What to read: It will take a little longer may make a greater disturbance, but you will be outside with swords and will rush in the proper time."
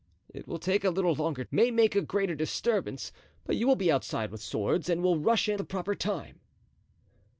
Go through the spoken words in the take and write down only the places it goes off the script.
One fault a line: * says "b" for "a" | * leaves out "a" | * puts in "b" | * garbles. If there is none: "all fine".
all fine